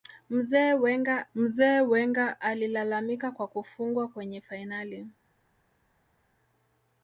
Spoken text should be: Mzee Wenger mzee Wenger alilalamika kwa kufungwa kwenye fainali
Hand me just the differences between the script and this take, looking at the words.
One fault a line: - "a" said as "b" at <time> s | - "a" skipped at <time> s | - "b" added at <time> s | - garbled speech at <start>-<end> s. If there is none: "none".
none